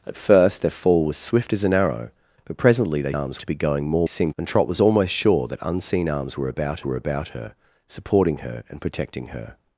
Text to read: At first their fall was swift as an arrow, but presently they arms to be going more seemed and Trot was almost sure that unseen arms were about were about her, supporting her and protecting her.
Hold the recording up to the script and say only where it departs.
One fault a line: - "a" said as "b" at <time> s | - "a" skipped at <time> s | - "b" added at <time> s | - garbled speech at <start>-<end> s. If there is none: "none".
none